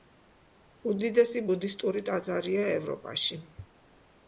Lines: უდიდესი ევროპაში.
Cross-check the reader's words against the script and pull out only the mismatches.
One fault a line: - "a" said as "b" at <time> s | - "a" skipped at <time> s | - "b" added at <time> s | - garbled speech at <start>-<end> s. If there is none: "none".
- "ბუდისტური ტაძარია" added at 1.5 s